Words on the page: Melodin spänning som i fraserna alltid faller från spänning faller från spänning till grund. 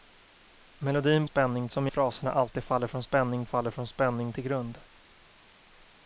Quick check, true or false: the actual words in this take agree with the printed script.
true